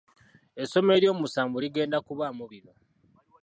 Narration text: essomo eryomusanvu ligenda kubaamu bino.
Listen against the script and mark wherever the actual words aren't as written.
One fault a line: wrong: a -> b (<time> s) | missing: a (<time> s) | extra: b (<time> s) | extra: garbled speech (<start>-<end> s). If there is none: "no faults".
no faults